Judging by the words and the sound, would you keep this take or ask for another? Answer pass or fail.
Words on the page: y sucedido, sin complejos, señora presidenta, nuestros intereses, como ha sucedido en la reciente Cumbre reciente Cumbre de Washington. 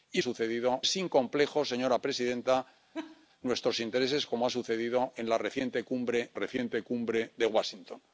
fail